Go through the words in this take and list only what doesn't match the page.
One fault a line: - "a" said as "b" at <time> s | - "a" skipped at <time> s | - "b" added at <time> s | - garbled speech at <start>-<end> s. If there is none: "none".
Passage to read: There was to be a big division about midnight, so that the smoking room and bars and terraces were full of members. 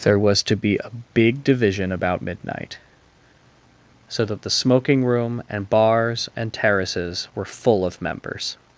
none